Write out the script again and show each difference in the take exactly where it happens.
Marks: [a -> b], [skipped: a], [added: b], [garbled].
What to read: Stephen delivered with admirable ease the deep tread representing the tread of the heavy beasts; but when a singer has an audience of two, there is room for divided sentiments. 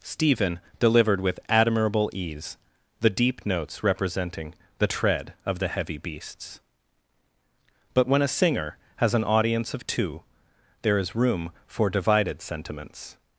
Stephen delivered with admirable ease the deep [tread -> notes] representing the tread of the heavy beasts; but when a singer has an audience of two, there is room for divided sentiments.